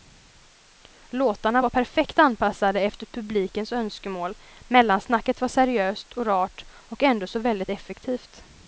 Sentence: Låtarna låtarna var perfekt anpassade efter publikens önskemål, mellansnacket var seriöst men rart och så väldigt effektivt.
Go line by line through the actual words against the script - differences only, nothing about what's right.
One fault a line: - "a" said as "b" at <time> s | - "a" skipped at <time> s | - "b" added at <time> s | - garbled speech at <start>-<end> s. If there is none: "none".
- "låtarna" skipped at 1.6 s
- "men" said as "och" at 6.1 s
- "ändå" added at 7.0 s